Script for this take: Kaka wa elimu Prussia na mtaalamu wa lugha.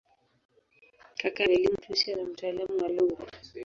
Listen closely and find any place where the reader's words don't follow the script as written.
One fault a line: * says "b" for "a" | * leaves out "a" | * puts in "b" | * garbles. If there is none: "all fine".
all fine